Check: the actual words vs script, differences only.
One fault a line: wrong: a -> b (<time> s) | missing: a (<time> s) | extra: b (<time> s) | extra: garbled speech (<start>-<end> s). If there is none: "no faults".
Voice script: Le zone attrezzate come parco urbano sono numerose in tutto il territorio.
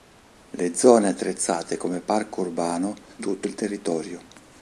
missing: sono numerose in (3.0 s)